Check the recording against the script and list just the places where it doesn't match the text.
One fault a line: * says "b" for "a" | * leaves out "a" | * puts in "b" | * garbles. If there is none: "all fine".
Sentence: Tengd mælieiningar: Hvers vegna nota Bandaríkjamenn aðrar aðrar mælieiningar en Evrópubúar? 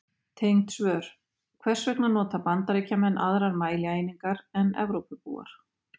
* says "svör" for "mælieiningar"
* leaves out "aðrar"